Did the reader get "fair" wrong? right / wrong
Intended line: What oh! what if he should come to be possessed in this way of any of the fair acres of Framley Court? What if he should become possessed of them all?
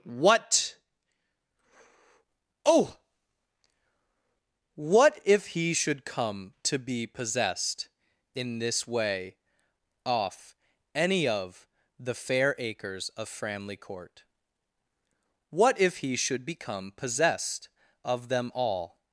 right